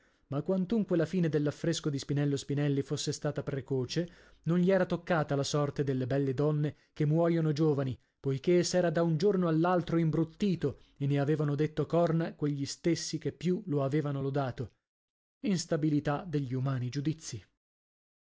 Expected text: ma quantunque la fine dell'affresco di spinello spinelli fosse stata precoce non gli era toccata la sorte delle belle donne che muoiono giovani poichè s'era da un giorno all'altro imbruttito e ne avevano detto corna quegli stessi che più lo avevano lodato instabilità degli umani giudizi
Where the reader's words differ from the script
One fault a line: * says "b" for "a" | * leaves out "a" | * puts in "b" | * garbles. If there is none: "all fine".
all fine